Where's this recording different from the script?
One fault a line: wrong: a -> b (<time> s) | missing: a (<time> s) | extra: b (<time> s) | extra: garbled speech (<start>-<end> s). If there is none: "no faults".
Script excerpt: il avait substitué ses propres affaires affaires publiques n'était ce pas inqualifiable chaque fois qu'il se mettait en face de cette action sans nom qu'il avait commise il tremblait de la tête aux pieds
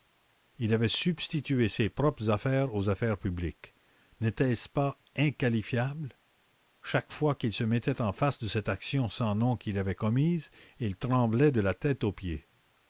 extra: aux (2.7 s)